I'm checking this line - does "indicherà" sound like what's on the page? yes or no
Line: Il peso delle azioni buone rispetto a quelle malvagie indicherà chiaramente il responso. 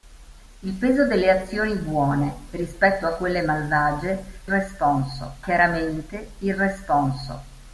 no